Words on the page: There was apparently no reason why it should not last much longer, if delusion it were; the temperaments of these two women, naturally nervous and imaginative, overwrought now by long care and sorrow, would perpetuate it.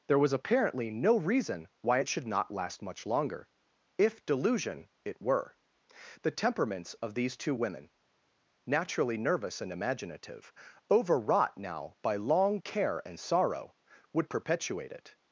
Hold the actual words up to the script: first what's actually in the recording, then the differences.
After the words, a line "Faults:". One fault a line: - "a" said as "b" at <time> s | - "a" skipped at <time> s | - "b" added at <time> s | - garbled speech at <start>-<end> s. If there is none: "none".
There was apparently no reason why it should not last much longer, if delusion it were; the temperaments of these two women, naturally nervous and imaginative, overwrought now by long care and sorrow, would perpetuate it.
Faults:
none